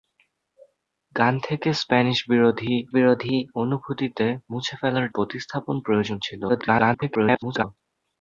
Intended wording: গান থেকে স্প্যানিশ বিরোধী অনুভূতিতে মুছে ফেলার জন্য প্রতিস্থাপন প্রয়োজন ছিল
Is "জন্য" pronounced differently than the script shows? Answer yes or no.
yes